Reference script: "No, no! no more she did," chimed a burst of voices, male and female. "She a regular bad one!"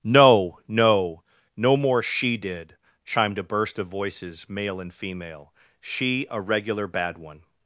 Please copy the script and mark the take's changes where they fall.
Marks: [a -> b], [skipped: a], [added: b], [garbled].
"No, no! no more she did," chimed a burst of voices, male and female. "She a regular bad one!"